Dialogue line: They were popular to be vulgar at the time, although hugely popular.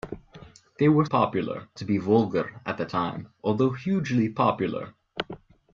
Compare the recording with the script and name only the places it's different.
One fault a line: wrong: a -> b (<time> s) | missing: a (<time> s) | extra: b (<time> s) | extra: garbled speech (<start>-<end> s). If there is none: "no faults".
no faults